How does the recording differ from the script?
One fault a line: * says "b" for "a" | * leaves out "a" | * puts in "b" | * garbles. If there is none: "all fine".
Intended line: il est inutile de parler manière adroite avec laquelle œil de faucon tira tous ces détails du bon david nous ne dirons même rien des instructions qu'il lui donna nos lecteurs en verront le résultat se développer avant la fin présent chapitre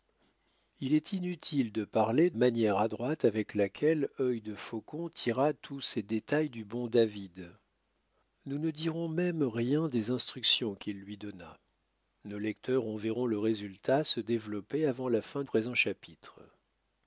all fine